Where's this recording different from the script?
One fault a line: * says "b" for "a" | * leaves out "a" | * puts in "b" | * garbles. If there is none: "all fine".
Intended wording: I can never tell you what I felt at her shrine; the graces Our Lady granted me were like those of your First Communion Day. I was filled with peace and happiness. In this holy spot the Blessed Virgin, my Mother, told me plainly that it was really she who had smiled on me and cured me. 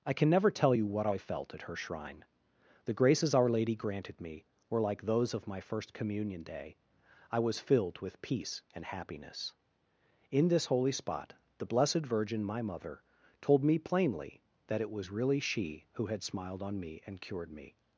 * says "my" for "your"